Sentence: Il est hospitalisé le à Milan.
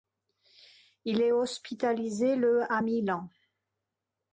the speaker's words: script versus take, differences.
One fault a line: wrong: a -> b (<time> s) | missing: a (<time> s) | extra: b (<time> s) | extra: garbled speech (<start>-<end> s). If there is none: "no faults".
no faults